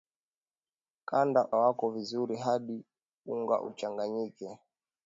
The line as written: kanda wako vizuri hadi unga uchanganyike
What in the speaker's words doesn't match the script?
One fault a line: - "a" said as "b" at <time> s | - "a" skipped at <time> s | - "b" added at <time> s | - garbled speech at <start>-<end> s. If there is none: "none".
none